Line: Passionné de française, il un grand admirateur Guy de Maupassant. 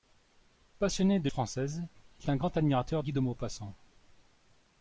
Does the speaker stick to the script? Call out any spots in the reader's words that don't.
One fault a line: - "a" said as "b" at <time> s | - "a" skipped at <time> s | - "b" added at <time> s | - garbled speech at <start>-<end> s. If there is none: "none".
none